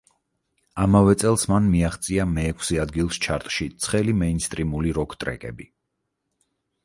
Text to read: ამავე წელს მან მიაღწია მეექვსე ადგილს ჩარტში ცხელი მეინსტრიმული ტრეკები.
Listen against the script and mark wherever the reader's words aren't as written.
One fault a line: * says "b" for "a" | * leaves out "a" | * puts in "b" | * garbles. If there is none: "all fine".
* puts in "როკ"